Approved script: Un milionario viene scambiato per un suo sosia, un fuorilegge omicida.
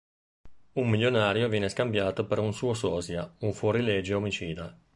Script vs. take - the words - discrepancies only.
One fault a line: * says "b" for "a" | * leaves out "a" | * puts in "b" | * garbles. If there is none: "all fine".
all fine